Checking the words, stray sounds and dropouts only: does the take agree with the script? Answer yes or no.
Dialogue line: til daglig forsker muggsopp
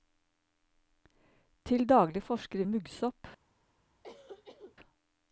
no